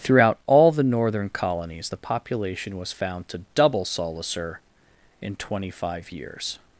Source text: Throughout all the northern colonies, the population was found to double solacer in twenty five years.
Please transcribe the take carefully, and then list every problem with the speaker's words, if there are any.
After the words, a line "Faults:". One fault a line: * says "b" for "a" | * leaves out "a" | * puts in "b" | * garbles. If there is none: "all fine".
Throughout all the northern colonies, the population was found to double solacer in twenty five years.
Faults:
all fine